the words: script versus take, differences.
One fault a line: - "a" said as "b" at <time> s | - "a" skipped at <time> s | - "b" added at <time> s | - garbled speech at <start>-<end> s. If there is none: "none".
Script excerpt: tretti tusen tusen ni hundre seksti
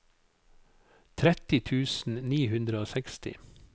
- "tusen" skipped at 2.2 s
- "og" added at 2.8 s